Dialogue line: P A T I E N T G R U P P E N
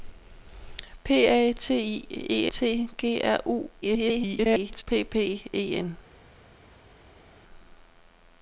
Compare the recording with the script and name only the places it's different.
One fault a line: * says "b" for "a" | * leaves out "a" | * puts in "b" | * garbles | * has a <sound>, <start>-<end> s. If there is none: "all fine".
* leaves out "N"
* garbles